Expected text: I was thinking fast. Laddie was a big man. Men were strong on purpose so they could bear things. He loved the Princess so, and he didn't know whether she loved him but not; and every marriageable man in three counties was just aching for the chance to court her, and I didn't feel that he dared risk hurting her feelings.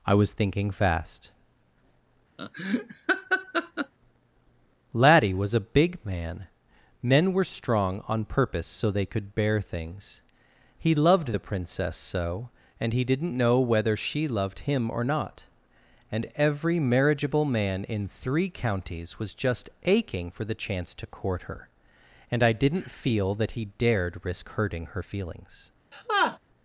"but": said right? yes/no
no